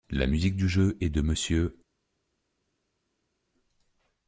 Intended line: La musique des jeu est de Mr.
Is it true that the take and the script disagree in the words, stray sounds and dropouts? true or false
true